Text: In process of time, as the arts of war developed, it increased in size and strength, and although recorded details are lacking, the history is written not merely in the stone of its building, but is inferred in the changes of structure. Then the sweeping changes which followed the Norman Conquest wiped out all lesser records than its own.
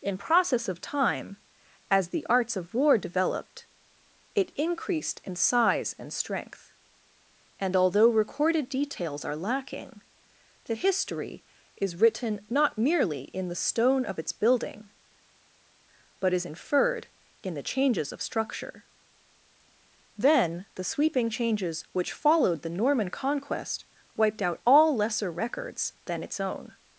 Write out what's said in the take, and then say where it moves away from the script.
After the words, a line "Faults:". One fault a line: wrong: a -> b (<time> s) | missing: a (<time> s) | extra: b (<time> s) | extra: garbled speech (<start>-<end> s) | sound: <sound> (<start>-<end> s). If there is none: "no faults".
In process of time, as the arts of war developed, it increased in size and strength, and although recorded details are lacking, the history is written not merely in the stone of its building, but is inferred in the changes of structure. Then the sweeping changes which followed the Norman Conquest wiped out all lesser records than its own.
Faults:
no faults